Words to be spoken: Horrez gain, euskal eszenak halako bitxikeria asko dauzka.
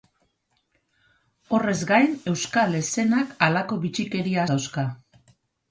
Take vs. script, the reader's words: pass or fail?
fail